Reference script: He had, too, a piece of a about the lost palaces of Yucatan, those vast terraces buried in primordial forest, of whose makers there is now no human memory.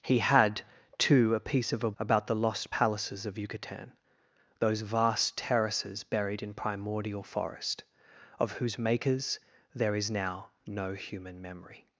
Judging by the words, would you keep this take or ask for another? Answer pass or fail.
pass